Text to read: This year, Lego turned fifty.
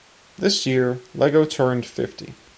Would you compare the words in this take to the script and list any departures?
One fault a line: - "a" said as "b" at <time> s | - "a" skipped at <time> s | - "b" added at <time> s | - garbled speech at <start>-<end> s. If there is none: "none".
none